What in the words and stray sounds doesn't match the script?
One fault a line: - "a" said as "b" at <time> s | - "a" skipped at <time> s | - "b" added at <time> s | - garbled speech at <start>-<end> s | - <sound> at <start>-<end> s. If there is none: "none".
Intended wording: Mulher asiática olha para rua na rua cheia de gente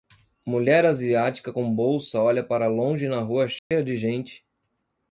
- "com bolsa" added at 1.5 s
- "rua" said as "longe" at 2.7 s
- dropout at 3.6-3.7 s